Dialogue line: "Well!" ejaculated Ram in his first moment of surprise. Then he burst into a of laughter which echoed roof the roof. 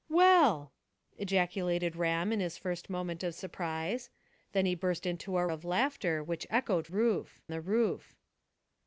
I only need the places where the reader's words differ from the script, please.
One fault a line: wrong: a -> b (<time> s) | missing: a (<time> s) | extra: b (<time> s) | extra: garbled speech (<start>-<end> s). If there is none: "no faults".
no faults